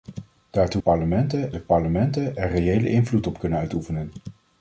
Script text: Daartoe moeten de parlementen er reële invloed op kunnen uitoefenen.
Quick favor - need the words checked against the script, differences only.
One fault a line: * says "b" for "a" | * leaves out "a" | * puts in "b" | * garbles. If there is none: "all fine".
* says "parlementen" for "moeten"